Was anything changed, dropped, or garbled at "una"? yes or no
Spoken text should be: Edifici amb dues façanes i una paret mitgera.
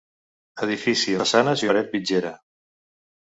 yes